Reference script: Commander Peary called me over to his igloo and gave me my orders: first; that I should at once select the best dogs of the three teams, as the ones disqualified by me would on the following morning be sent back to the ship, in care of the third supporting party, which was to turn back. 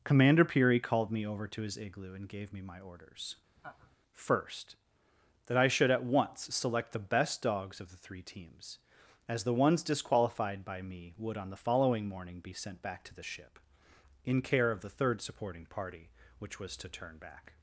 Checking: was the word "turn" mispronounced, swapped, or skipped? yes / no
no